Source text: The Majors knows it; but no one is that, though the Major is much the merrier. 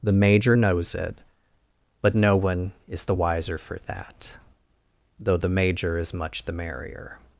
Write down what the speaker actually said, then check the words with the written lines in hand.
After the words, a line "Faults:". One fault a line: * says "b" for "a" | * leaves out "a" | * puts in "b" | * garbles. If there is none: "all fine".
The Major knows it; but no one is the wiser for that, though the Major is much the merrier.
Faults:
* says "Major" for "Majors"
* puts in "the wiser for"